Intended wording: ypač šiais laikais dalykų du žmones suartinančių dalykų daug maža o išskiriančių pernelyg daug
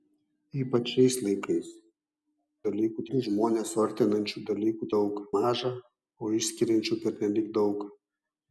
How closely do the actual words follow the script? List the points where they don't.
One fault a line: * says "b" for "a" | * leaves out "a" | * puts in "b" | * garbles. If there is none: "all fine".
all fine